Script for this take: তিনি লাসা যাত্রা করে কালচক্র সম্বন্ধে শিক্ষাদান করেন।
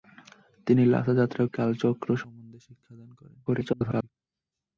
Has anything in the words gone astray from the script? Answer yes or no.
yes